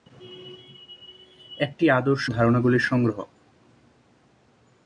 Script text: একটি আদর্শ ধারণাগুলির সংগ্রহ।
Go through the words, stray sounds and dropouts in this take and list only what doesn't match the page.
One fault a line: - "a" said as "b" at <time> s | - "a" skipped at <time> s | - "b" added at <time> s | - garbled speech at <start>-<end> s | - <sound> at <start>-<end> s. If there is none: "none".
none